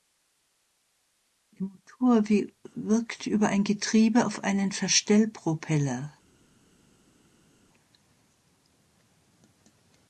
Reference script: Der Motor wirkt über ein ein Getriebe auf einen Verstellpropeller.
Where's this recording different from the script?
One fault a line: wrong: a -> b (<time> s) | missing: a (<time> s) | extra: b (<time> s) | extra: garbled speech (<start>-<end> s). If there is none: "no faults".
missing: ein (3.6 s)